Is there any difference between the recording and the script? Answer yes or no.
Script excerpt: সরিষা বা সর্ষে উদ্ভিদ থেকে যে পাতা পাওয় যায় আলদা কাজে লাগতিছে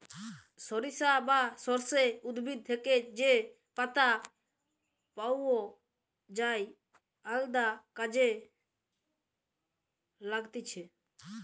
no